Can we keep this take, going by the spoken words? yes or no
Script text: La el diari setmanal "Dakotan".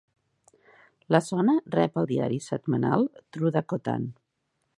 no